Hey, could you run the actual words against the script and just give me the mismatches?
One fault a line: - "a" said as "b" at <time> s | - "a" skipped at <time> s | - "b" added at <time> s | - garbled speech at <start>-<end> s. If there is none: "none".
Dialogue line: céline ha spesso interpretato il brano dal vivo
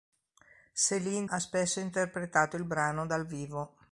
none